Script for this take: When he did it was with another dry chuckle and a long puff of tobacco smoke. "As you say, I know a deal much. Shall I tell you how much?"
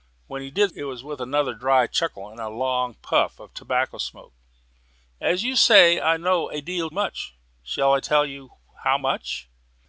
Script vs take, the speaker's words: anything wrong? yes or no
no